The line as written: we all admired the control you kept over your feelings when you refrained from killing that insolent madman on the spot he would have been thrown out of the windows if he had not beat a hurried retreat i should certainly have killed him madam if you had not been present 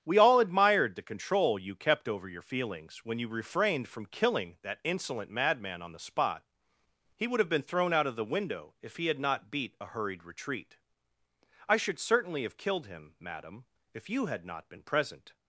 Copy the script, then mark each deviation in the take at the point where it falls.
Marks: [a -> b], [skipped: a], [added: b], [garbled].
we all admired the control you kept over your feelings when you refrained from killing that insolent madman on the spot he would have been thrown out of the [windows -> window] if he had not beat a hurried retreat i should certainly have killed him madam if you had not been present